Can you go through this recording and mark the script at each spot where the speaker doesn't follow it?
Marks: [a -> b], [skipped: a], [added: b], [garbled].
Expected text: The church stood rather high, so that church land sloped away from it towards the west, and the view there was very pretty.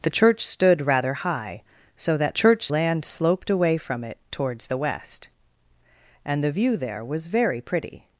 The church stood rather high, so that church land sloped away from it towards the west, and the view there was very pretty.